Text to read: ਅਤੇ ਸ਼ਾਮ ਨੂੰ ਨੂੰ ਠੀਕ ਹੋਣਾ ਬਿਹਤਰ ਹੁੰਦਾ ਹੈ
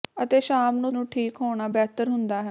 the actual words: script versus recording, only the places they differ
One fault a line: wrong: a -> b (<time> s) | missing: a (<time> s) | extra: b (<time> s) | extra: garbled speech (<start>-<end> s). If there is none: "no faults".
no faults